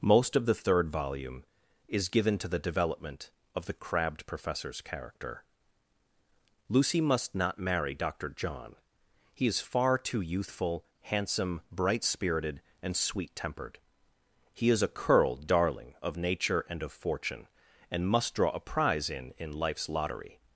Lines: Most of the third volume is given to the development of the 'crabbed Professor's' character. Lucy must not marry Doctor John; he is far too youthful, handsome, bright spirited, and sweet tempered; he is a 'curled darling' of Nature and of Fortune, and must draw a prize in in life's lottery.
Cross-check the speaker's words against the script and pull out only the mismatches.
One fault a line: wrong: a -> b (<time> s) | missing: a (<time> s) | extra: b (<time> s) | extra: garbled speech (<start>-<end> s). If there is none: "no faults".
no faults